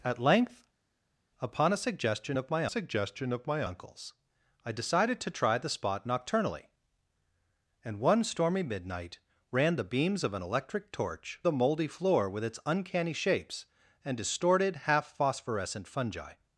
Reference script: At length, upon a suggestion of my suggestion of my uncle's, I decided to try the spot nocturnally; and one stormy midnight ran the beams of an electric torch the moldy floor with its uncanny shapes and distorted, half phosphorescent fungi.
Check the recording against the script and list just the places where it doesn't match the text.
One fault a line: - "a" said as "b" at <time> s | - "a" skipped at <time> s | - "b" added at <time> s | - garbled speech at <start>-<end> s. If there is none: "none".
none